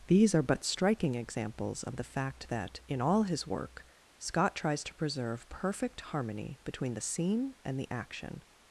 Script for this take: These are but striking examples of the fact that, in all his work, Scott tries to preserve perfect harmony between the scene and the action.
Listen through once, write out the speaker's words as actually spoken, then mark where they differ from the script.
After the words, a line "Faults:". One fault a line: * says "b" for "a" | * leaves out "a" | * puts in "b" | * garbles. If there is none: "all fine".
These are but striking examples of the fact that, in all his work, Scott tries to preserve perfect harmony between the scene and the action.
Faults:
all fine